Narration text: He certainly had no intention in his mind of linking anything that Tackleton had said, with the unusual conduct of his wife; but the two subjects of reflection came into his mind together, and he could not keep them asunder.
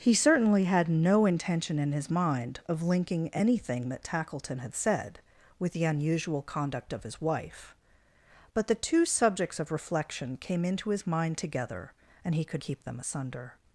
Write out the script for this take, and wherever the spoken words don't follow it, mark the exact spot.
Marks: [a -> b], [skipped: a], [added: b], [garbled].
He certainly had no intention in his mind of linking anything that Tackleton had said, with the unusual conduct of his wife; but the two subjects of reflection came into his mind together, and he could [skipped: not] keep them asunder.